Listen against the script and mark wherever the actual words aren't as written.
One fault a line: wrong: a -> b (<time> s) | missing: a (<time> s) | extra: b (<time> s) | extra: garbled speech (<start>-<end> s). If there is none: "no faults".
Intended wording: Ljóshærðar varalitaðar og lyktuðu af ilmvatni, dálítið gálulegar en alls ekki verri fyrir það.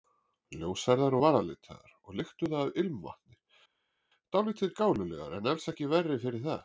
no faults